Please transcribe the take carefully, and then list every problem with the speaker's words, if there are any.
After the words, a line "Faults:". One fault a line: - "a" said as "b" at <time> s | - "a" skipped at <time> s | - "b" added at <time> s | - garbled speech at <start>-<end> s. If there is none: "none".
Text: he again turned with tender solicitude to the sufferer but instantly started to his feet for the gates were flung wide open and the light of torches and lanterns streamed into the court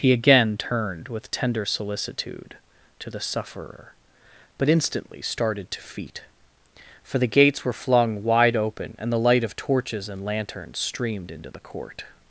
he again turned with tender solicitude to the sufferer but instantly started to feet for the gates were flung wide open and the light of torches and lanterns streamed into the court
Faults:
- "his" skipped at 5.8 s